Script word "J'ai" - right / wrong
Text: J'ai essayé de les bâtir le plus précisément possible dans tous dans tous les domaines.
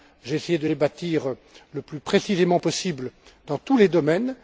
right